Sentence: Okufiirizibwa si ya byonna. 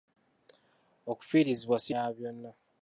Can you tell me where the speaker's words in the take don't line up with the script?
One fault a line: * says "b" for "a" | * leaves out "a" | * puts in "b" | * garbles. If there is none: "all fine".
all fine